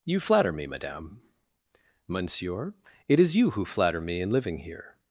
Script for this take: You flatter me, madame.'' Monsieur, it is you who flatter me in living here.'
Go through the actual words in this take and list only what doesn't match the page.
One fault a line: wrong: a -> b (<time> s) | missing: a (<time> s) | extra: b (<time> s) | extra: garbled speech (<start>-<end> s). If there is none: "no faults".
no faults